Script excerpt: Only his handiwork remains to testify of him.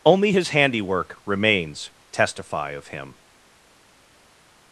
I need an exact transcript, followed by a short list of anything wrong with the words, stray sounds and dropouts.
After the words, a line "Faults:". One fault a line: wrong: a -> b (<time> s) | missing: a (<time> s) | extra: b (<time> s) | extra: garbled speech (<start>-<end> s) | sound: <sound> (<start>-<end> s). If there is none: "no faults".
Only his handiwork remains testify of him.
Faults:
missing: to (1.9 s)